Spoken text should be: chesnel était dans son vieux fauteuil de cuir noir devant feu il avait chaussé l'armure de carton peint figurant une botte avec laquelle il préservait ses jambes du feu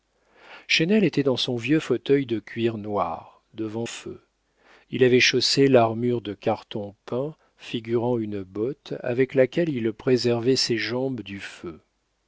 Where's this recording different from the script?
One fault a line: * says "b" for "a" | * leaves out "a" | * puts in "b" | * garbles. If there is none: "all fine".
all fine